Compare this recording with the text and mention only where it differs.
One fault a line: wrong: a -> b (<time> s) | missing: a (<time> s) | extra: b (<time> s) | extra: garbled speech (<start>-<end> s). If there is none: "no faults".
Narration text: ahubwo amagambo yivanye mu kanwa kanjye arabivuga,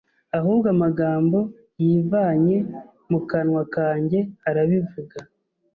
no faults